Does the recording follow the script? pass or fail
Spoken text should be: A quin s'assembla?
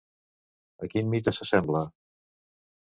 fail